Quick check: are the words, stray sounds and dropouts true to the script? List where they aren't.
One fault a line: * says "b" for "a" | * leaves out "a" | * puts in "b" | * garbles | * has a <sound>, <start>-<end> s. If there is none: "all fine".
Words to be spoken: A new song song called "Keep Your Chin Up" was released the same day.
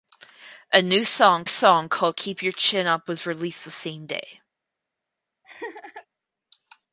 * has a laugh, 5.4-6.1 s